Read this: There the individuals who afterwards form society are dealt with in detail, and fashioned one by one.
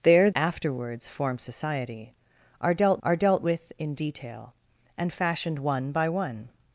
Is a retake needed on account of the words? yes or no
yes